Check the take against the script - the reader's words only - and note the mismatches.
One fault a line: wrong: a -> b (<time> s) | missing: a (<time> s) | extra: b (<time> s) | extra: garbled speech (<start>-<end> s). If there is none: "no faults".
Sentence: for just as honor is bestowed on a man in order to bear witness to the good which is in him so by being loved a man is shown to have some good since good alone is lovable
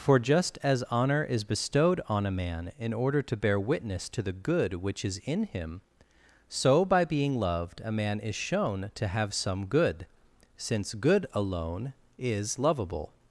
no faults